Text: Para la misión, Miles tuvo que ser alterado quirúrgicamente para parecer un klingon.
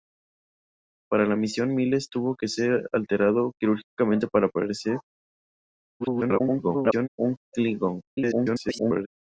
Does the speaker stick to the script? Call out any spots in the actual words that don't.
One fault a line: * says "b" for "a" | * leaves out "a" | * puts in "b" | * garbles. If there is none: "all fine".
* garbles
* garbles